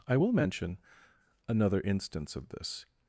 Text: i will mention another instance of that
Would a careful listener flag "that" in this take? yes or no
yes